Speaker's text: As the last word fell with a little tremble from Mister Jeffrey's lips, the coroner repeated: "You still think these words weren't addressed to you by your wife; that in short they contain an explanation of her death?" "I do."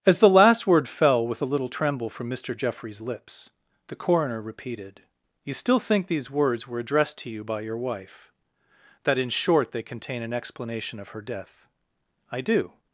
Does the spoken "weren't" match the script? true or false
false